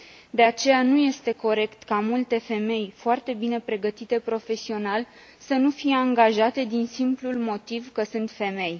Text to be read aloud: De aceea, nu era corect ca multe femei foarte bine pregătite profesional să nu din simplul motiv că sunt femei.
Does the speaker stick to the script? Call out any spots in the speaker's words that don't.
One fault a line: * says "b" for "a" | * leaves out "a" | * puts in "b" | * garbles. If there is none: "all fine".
* says "este" for "era"
* puts in "fie angajate"